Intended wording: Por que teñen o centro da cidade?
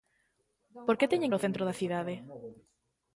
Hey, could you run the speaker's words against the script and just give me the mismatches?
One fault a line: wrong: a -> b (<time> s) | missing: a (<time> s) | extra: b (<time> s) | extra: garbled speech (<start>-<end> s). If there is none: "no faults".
no faults